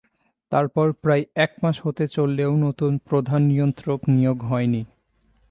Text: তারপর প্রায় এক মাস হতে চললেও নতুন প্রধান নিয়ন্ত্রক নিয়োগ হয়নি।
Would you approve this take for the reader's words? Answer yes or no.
yes